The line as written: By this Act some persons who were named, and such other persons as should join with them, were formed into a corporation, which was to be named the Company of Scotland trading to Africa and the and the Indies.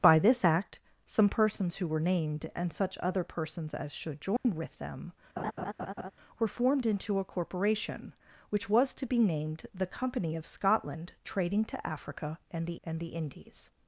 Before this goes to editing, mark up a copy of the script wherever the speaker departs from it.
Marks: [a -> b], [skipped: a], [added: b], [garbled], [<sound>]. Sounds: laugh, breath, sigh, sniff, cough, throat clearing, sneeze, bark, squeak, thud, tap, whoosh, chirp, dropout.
By this Act some persons who were named, and such other persons as should join [dropout] with them, [laugh] were formed into a corporation, which was to be named the Company of Scotland trading to Africa and the and the Indies.